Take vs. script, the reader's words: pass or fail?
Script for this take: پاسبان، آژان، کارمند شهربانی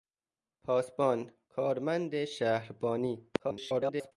fail